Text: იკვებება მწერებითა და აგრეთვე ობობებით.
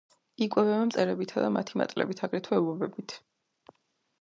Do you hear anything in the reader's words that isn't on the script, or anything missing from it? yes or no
yes